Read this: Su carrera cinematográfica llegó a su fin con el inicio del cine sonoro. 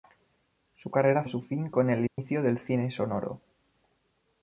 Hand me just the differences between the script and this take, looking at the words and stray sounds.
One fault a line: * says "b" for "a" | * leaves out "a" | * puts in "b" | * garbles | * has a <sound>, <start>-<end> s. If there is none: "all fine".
* leaves out "cinematográfica llegó"
* has a dropout, 2.1-2.2 s